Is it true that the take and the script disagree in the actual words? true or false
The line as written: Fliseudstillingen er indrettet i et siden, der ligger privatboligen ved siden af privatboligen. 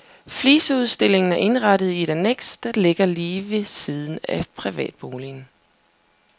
true